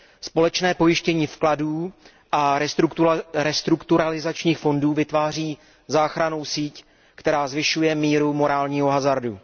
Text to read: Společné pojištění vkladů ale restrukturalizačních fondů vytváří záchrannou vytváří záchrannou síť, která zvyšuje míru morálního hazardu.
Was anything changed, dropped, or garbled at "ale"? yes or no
yes